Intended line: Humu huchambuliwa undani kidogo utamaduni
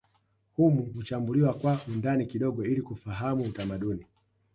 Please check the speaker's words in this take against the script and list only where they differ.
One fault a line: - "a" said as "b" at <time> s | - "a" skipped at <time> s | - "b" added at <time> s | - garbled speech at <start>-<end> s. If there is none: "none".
- "kwa" added at 1.5 s
- "ili kufahamu" added at 2.6 s